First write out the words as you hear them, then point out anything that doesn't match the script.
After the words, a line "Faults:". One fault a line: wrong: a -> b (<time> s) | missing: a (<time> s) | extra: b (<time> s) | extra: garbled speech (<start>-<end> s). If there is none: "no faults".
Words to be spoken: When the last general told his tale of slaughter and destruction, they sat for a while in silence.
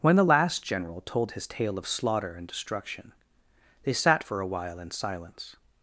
When the last general told his tale of slaughter and destruction, they sat for a while in silence.
Faults:
no faults